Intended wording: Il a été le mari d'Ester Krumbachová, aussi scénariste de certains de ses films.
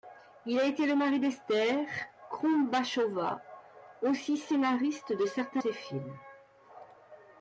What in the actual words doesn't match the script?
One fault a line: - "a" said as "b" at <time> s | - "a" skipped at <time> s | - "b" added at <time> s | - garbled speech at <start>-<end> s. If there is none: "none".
- "de" skipped at 5.6 s